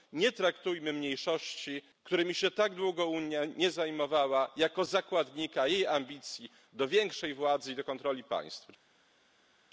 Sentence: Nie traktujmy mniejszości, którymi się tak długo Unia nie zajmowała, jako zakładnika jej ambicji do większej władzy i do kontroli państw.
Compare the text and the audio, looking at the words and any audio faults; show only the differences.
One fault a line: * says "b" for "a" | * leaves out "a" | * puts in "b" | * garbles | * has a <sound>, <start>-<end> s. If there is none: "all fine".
all fine